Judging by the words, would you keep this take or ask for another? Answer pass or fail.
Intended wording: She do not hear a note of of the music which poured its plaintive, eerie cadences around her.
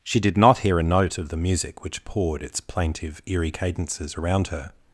fail